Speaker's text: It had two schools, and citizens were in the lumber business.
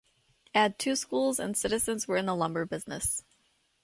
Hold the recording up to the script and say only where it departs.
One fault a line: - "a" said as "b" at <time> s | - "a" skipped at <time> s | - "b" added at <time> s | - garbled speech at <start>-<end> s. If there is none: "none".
none